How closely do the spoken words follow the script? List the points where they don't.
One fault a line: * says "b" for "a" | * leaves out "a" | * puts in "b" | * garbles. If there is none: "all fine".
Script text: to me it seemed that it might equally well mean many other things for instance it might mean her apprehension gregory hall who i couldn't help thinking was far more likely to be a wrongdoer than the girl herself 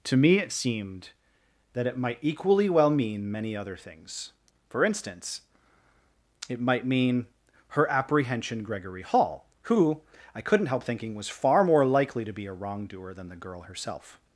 all fine